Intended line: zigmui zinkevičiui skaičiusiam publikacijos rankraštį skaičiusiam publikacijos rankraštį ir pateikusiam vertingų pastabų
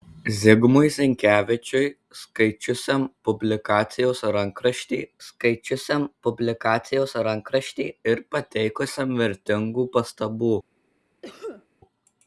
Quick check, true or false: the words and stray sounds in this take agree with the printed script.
false